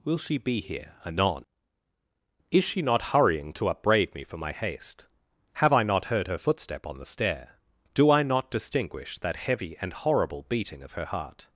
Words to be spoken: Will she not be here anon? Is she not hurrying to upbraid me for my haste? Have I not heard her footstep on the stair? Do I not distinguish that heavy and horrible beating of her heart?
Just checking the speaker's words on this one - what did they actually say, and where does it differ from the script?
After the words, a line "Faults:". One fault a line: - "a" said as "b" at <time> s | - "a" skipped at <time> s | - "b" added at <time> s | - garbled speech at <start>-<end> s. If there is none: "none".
Will she be here anon? Is she not hurrying to upbraid me for my haste? Have I not heard her footstep on the stair? Do I not distinguish that heavy and horrible beating of her heart?
Faults:
- "not" skipped at 0.4 s